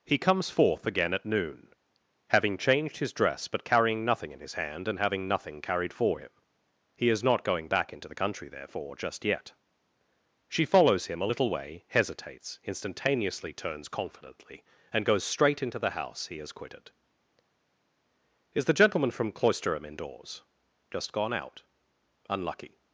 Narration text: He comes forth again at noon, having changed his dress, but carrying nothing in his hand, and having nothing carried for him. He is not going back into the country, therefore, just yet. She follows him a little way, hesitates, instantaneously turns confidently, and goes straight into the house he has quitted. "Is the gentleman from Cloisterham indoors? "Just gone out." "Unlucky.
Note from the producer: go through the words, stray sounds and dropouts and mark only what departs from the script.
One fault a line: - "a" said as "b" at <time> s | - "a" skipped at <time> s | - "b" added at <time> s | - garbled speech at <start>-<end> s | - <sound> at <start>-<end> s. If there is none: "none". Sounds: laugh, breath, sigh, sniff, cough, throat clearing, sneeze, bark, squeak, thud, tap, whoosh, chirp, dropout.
none